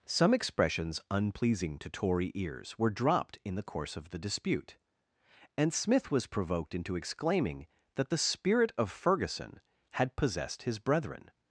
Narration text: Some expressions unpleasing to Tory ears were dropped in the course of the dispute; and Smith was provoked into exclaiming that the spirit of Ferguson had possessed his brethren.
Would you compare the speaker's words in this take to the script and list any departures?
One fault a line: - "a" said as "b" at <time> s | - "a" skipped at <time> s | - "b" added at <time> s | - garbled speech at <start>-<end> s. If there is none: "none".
none